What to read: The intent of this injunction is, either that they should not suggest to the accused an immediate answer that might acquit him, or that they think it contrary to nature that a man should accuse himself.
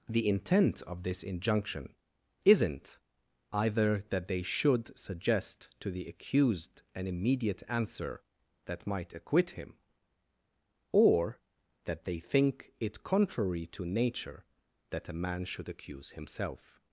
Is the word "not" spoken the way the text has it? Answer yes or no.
no